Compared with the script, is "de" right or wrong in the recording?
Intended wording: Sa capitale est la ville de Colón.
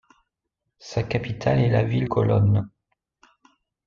wrong